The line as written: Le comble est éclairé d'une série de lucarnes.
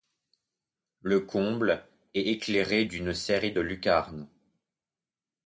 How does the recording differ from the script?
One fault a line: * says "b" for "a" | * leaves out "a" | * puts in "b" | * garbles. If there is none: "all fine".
all fine